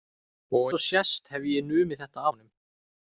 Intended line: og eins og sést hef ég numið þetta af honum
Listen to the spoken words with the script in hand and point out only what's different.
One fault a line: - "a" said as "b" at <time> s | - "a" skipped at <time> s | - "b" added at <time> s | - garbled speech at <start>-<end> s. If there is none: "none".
- "eins" skipped at 0.6 s
- "af" skipped at 2.2 s